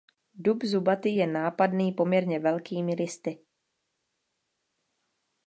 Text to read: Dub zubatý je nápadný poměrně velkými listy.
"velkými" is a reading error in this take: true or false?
false